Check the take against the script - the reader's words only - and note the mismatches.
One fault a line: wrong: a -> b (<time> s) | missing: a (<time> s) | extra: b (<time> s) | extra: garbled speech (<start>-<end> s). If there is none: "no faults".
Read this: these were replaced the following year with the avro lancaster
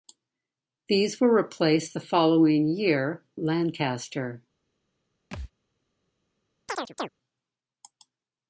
missing: with the avro (3.2 s)